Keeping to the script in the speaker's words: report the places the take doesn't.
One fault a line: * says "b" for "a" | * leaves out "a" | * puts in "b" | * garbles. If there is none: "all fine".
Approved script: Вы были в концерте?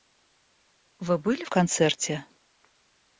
all fine